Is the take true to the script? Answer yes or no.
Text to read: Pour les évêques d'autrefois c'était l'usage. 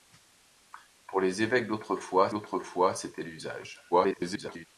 no